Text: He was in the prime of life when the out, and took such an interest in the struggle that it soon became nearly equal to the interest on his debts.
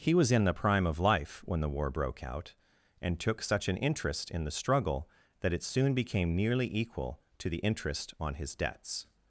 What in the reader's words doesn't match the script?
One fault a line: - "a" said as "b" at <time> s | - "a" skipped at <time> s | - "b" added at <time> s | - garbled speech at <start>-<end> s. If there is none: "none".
- "war broke" added at 1.7 s